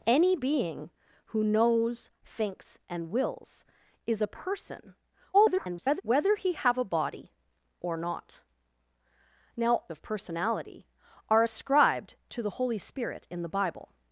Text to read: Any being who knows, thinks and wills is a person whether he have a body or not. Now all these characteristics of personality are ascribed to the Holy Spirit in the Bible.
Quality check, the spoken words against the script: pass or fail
fail